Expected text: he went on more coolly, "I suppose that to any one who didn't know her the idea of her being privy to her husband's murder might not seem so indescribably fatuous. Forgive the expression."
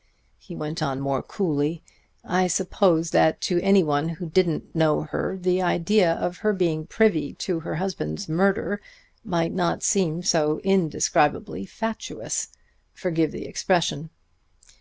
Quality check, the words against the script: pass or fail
pass